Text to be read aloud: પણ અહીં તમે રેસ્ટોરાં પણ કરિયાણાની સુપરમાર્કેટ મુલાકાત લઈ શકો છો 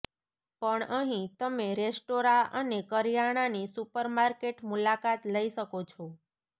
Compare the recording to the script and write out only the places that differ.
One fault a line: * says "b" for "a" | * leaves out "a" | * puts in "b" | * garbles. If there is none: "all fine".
* says "અને" for "પણ"